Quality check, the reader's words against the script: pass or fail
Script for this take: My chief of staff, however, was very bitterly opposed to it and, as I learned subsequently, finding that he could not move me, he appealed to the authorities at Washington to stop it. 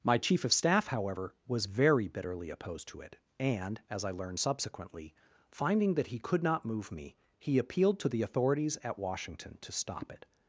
pass